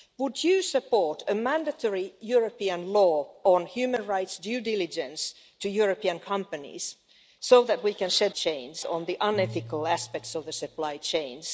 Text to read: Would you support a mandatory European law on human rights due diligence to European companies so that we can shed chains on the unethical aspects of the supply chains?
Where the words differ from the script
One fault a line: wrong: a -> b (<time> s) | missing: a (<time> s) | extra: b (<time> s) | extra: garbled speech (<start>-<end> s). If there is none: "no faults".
no faults